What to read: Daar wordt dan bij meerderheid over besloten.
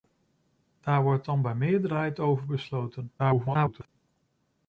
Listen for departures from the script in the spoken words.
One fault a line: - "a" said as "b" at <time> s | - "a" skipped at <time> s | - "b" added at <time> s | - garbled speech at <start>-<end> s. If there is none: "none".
- garbled speech at 3.2-3.9 s